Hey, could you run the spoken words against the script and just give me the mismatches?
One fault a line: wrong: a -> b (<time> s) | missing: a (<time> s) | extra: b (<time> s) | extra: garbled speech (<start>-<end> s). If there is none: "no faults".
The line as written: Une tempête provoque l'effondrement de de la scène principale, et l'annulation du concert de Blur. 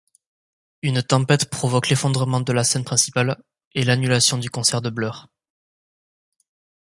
missing: de (2.5 s)